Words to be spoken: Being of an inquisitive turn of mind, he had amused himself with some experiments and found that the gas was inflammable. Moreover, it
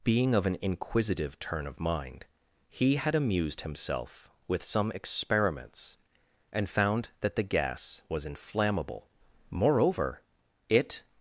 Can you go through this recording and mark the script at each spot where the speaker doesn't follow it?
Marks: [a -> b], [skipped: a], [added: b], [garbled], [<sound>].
Being of an inquisitive turn of mind, he had amused himself with some experiments and found that the gas was inflammable. Moreover, it